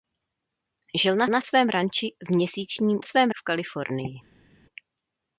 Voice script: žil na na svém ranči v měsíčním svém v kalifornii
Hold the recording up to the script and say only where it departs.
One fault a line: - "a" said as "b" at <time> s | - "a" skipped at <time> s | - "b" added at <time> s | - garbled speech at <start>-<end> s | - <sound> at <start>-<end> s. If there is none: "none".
none